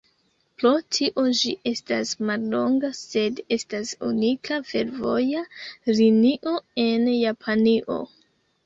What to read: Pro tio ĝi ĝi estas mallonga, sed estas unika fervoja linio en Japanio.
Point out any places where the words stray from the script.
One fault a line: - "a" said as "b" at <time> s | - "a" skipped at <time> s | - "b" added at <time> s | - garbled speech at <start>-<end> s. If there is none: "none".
- "ĝi" skipped at 1.5 s